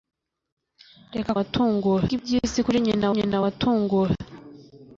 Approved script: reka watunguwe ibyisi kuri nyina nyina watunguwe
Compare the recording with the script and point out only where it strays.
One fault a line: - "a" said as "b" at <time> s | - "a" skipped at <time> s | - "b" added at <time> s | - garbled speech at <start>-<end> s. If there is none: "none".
none